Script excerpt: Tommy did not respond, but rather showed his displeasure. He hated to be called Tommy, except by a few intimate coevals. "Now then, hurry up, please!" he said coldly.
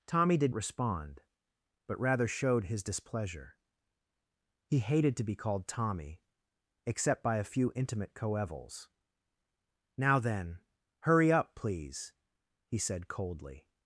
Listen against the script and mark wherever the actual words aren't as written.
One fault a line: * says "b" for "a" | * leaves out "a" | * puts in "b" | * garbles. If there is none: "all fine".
* leaves out "not"